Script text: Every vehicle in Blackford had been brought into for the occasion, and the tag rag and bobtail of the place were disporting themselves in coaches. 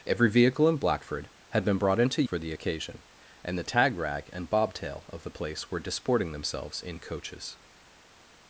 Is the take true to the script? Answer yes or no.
yes